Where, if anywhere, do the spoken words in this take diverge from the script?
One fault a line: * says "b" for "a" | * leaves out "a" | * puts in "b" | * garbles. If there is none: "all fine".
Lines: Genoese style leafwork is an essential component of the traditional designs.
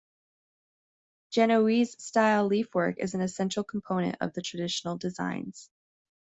all fine